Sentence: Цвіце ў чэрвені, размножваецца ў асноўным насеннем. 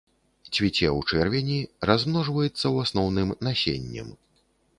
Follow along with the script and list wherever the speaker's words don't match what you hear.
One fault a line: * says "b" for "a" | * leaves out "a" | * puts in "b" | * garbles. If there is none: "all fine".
all fine